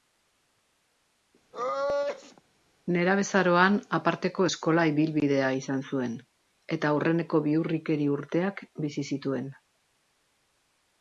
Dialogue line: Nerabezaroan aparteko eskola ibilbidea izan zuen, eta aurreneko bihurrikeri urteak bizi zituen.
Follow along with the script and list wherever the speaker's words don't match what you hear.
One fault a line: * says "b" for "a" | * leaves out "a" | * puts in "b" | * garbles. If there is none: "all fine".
all fine